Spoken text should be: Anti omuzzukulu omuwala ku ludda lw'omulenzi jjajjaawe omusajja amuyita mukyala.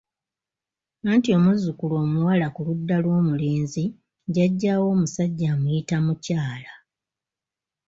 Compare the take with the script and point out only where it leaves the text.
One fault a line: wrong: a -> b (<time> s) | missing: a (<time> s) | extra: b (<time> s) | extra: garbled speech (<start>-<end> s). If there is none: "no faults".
no faults